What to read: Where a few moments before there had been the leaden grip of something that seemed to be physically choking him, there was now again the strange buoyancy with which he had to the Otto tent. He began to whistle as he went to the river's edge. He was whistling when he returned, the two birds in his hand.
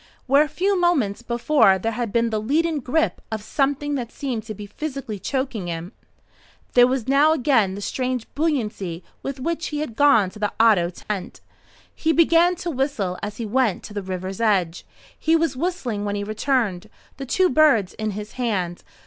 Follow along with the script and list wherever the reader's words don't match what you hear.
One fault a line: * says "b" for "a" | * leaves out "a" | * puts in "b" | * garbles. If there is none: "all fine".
* puts in "gone"